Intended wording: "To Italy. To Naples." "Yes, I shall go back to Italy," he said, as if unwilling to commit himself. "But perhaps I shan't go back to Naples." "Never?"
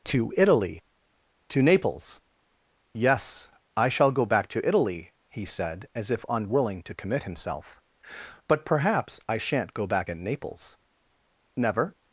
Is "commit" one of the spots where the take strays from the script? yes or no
no